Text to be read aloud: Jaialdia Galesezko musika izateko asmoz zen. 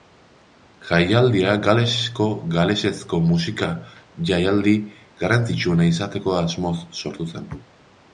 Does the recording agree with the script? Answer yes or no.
no